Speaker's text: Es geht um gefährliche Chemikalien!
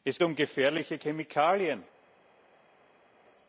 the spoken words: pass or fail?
fail